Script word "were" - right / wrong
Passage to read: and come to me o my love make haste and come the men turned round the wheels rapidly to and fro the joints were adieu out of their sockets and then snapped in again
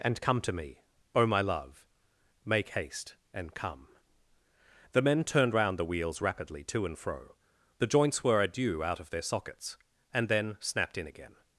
right